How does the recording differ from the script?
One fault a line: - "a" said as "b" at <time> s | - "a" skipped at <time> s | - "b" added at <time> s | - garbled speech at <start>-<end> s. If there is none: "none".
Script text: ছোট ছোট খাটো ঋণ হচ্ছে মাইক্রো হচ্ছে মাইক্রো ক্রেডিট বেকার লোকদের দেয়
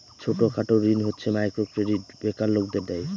- "ছোট" skipped at 0.4 s
- "হচ্ছে মাইক্রো" skipped at 1.6 s